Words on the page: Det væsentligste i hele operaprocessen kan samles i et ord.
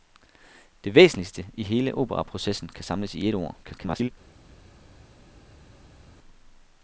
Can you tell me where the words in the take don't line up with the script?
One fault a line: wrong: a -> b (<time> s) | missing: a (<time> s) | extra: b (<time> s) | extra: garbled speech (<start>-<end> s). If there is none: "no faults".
extra: garbled speech (3.6-4.1 s)